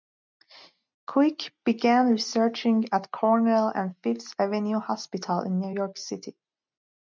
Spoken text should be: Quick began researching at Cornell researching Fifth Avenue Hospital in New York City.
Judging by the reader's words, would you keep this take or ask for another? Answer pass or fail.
fail